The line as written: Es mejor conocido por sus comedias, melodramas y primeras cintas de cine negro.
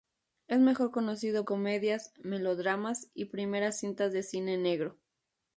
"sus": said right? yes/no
no